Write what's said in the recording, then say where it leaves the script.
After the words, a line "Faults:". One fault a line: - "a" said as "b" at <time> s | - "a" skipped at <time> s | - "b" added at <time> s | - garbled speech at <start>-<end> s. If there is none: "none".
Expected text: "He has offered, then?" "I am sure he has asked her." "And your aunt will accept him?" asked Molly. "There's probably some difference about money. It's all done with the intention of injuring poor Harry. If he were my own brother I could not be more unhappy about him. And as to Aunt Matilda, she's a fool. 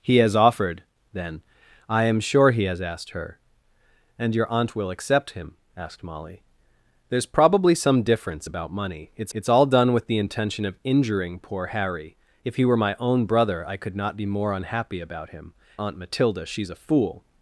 "He has offered, then?" "I am sure he has asked her." "And your aunt will accept him?" asked Molly. "There's probably some difference about money. It's it's all done with the intention of injuring poor Harry. If he were my own brother I could not be more unhappy about him. Aunt Matilda, she's a fool.
Faults:
- "it's" added at 9.3 s
- "And as to" skipped at 15.5 s